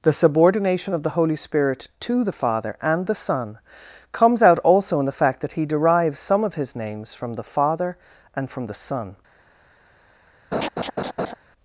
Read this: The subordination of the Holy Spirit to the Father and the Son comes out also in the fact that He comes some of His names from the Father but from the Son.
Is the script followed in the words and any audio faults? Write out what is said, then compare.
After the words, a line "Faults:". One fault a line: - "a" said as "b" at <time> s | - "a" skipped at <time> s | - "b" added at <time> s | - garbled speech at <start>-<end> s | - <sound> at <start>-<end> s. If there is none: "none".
The subordination of the Holy Spirit to the Father and the Son comes out also in the fact that He derives some of His names from the Father and from the Son.
Faults:
- "comes" said as "derives" at 5.7 s
- "but" said as "and" at 8.4 s
- laugh at 10.5-11.3 s